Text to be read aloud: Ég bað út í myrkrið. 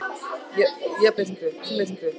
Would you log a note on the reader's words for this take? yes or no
yes